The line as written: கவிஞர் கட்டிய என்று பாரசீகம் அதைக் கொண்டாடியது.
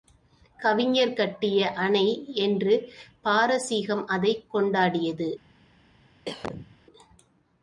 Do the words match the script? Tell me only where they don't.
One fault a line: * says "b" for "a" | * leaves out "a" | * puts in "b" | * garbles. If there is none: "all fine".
* puts in "அணை"